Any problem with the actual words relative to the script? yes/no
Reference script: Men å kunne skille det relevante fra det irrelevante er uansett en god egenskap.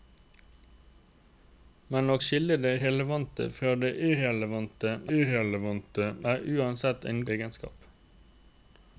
yes